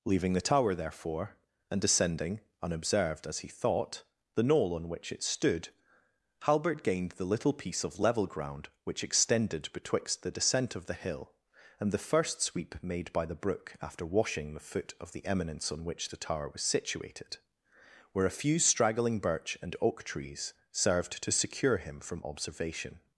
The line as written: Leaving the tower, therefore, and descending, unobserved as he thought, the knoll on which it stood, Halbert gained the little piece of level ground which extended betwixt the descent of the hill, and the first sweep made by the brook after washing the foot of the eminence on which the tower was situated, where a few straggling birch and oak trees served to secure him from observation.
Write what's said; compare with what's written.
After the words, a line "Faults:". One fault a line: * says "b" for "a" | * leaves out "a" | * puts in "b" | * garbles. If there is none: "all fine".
Leaving the tower, therefore, and descending, unobserved as he thought, the knoll on which it stood, Halbert gained the little piece of level ground which extended betwixt the descent of the hill, and the first sweep made by the brook after washing the foot of the eminence on which the tower was situated, where a few straggling birch and oak trees served to secure him from observation.
Faults:
all fine